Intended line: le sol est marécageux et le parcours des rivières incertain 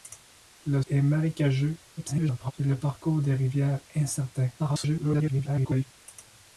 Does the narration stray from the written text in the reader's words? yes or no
yes